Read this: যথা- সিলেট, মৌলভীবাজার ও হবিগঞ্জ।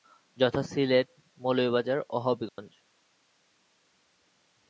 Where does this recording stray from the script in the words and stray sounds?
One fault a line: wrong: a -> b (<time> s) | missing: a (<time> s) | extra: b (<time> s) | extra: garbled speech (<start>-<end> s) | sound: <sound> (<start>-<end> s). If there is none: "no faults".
sound: dropout (2.5-2.6 s)